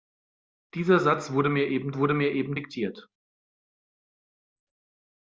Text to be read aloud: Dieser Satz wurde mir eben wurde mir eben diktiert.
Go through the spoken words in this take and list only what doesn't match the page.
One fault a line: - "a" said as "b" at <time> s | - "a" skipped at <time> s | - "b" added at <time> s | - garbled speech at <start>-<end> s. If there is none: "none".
none